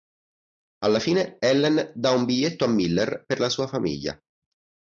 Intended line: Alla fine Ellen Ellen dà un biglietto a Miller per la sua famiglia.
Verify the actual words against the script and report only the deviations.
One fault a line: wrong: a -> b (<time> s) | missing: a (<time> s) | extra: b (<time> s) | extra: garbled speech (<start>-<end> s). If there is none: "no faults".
missing: Ellen (1.9 s)